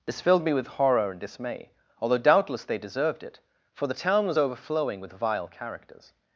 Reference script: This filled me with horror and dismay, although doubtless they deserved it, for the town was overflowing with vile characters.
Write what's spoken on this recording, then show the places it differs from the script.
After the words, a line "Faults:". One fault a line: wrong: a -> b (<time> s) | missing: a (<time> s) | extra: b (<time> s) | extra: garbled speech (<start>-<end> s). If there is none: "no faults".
This filled me with horror and dismay, although doubtless they deserved it, for the town was overflowing with vile characters.
Faults:
no faults